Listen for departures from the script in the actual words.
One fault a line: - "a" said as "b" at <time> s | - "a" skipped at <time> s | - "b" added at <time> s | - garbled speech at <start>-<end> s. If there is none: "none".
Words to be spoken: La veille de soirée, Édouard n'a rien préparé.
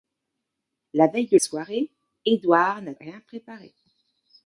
none